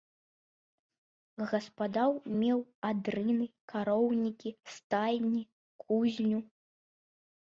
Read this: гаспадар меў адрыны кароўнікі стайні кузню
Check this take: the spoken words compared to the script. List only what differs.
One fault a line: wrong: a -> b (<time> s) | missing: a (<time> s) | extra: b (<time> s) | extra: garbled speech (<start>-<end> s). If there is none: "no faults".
no faults